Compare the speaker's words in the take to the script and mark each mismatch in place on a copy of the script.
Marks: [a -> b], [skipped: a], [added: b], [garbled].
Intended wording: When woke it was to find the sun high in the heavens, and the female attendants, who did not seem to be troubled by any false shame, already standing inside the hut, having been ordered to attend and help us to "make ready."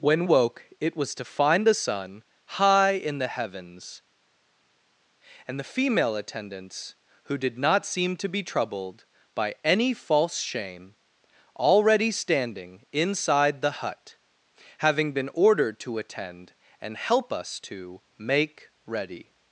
When woke it was to find the sun high in the heavens, and the female attendants, who did not seem to be troubled by any false shame, already standing inside the hut, having been ordered to attend and help us to "make ready."